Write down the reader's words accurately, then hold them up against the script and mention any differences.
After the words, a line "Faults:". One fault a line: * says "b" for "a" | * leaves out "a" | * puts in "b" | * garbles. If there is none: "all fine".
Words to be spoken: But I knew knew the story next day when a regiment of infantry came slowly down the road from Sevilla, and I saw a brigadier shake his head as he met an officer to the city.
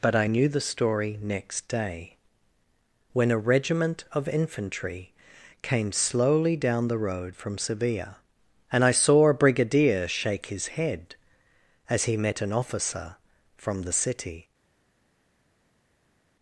But I knew the story next day when a regiment of infantry came slowly down the road from Sevilla, and I saw a brigadier shake his head as he met an officer from the city.
Faults:
* leaves out "knew"
* says "from" for "to"